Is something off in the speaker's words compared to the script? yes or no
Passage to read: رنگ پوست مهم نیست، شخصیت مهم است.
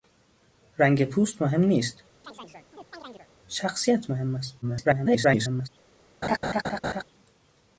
yes